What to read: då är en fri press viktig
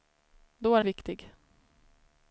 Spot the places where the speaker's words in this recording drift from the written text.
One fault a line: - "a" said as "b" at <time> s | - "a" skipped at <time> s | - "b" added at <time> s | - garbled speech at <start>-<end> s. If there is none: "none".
- "en fri press" skipped at 0.8 s